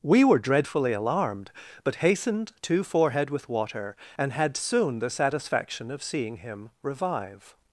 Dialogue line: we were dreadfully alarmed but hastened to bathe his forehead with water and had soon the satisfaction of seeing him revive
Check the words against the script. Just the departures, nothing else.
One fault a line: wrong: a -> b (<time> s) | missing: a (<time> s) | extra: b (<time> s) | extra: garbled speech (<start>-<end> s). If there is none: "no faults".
missing: bathe his (2.8 s)